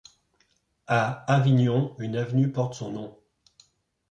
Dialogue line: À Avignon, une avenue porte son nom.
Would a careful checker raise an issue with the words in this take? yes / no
no